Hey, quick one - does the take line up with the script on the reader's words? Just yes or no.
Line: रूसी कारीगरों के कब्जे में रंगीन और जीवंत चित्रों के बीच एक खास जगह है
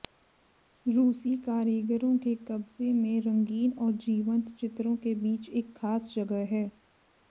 yes